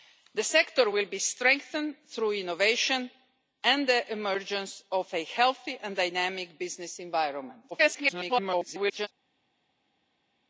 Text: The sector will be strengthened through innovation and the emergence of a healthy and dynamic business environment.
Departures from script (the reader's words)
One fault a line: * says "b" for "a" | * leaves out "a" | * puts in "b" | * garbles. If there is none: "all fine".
* garbles